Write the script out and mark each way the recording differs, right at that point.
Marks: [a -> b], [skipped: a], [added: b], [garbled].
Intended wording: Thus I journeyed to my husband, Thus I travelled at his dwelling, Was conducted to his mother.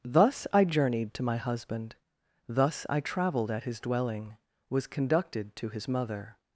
Thus I journeyed to my husband, Thus I travelled at his dwelling, Was conducted to his mother.